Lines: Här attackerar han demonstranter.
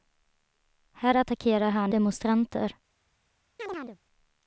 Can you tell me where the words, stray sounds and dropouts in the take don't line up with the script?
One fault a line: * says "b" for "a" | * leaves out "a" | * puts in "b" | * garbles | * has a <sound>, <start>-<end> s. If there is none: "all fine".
* has a chirp, 3.6-4.0 s